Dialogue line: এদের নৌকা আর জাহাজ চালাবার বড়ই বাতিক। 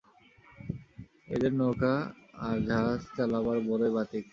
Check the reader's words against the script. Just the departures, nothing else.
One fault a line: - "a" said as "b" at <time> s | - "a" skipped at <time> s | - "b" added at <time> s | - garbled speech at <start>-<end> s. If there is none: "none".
none